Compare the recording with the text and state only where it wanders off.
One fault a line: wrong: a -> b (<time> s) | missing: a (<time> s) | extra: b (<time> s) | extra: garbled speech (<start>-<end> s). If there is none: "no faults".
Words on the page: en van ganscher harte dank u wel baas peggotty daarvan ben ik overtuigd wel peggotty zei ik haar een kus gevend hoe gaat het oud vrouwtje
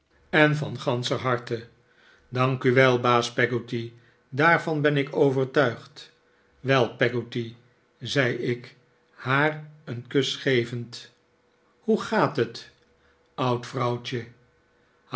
no faults